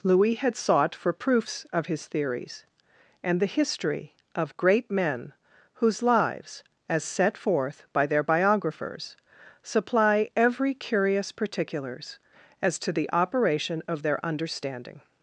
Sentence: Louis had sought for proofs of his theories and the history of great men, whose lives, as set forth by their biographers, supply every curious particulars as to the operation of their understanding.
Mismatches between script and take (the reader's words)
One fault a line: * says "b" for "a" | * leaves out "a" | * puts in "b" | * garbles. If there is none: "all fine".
all fine